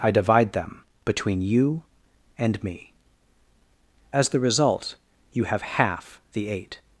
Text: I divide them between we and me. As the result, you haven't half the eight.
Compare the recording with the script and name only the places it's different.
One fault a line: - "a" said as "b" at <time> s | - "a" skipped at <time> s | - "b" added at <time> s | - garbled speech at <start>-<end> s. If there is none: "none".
- "we" said as "you" at 1.4 s
- "haven't" said as "have" at 5.5 s